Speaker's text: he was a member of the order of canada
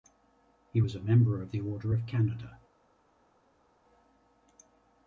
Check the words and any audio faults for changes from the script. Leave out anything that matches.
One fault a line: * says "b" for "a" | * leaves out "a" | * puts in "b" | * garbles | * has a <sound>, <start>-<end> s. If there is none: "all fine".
all fine